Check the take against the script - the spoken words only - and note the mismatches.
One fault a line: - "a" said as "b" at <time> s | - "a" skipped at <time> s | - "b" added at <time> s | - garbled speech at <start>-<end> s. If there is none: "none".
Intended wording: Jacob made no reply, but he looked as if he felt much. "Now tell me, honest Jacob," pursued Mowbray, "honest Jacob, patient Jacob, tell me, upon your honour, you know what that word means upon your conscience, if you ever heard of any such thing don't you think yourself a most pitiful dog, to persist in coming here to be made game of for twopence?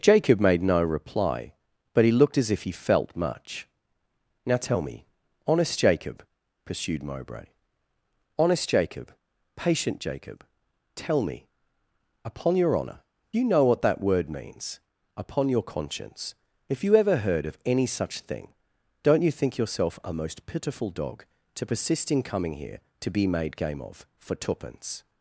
none